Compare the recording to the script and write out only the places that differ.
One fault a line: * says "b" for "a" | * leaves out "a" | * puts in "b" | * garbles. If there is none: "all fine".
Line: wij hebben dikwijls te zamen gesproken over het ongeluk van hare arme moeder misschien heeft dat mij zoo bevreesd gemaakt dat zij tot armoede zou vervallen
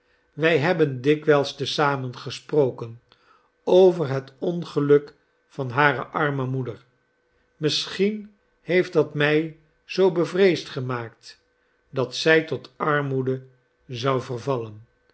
all fine